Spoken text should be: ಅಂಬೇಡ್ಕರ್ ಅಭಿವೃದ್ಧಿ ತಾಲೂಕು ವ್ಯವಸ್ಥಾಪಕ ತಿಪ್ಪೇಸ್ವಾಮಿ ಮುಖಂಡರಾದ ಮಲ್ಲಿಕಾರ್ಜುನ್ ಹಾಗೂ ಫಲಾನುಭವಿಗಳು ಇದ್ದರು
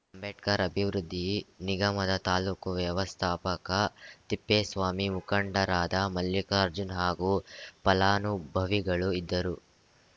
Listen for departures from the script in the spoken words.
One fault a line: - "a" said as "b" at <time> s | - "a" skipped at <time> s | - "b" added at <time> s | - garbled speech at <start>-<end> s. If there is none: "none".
- "ನಿಗಮದ" added at 1.6 s